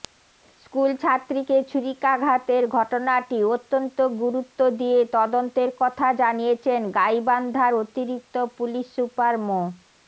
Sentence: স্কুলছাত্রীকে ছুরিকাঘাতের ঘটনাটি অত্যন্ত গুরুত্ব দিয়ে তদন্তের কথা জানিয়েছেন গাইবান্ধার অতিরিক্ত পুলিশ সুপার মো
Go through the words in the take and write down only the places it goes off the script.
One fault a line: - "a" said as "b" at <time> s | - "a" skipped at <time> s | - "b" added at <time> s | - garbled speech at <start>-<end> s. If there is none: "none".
none